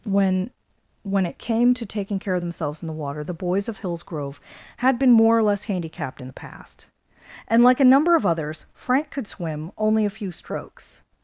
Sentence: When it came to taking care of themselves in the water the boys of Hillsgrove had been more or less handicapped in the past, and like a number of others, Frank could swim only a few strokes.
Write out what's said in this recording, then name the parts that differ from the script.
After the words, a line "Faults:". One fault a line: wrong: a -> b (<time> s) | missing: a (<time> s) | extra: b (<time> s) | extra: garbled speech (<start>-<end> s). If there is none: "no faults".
When when it came to taking care of themselves in the water the boys of Hillsgrove had been more or less handicapped in the past, and like a number of others, Frank could swim only a few strokes.
Faults:
extra: when (1.0 s)